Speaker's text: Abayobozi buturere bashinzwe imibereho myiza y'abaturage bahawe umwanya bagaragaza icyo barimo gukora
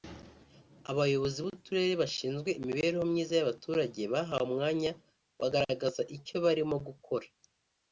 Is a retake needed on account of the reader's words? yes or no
no